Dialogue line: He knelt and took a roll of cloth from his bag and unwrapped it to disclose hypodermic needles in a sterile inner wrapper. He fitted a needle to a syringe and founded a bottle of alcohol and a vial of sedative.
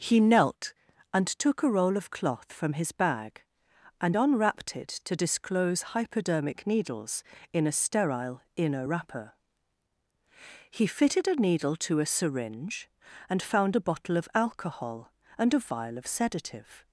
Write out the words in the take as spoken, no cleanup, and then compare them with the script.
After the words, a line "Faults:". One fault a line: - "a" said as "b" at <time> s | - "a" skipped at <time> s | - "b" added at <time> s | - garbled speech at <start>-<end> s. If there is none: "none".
He knelt and took a roll of cloth from his bag and unwrapped it to disclose hypodermic needles in a sterile inner wrapper. He fitted a needle to a syringe and found a bottle of alcohol and a vial of sedative.
Faults:
- "founded" said as "found" at 13.4 s